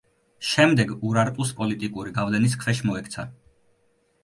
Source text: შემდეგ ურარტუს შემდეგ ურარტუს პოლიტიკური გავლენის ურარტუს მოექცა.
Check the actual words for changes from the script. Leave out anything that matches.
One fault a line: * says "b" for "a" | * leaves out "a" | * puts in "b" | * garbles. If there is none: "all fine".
* leaves out "შემდეგ ურარტუს"
* says "ქვეშ" for "ურარტუს"